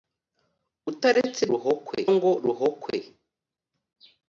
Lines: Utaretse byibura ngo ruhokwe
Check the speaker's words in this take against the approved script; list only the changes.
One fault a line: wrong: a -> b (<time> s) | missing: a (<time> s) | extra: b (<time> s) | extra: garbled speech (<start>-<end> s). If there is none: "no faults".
wrong: byibura -> ruhokwe (1.5 s)